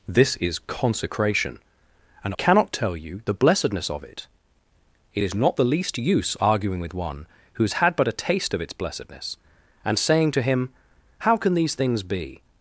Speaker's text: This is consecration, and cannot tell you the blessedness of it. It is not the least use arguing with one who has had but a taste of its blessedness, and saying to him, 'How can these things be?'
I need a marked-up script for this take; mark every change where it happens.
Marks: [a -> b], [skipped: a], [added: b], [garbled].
This is consecration, and cannot tell you the blessedness of it. It is not the least use arguing with one who has had but a taste of its blessedness, and saying to him, 'How can these things be?'